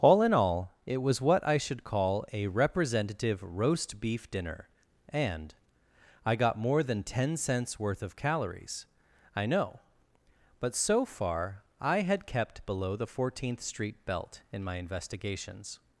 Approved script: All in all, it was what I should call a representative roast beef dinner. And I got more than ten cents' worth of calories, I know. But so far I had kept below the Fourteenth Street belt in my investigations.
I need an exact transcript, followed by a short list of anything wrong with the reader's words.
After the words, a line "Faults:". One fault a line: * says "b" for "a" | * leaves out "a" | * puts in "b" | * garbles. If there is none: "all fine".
All in all, it was what I should call a representative roast beef dinner. And I got more than ten cents' worth of calories, I know. But so far I had kept below the Fourteenth Street belt in my investigations.
Faults:
all fine